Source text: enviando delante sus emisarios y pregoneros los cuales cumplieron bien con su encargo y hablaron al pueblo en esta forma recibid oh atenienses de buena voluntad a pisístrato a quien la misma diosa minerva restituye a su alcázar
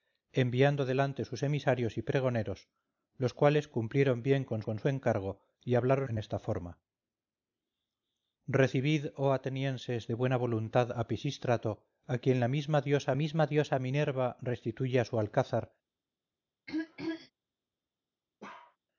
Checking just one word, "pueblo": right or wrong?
wrong